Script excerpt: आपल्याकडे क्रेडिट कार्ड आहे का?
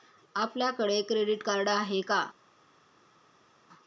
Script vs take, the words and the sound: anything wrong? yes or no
no